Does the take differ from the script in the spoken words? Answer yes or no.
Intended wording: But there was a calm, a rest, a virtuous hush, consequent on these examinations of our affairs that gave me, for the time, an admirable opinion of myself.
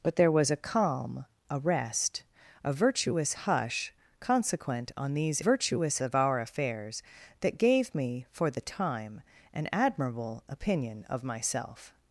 yes